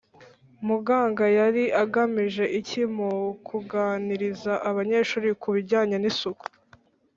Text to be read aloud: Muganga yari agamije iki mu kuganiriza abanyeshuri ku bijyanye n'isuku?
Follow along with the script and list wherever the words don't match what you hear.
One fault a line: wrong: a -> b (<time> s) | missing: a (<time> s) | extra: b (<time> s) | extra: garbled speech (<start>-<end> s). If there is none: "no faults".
no faults